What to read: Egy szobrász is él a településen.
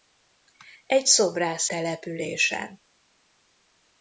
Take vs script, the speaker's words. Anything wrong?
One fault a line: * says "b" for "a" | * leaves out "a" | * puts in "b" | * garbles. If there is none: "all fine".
* leaves out "is él a"